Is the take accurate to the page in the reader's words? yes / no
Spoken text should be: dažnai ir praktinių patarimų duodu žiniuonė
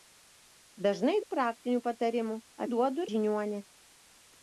yes